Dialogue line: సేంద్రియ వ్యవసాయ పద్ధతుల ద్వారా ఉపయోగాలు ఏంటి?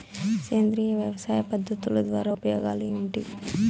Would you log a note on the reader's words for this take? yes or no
no